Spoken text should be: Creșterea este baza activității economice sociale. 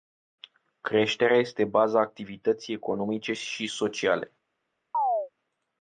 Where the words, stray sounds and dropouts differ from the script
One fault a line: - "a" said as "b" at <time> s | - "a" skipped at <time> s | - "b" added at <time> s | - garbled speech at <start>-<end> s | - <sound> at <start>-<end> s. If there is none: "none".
- "și" added at 3.3 s
- chirp at 4.9-5.3 s